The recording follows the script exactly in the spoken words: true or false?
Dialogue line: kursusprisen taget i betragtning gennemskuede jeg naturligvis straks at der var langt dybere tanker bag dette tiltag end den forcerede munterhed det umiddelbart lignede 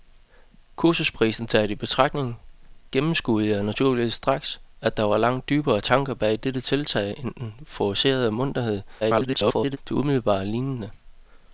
false